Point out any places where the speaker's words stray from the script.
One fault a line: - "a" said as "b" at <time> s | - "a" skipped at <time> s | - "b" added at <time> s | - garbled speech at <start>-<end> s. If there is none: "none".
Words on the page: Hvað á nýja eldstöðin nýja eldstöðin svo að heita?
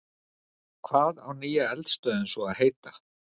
- "nýja eldstöðin" skipped at 2.3 s